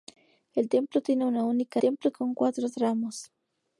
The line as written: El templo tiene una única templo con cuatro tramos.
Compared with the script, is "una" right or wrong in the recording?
right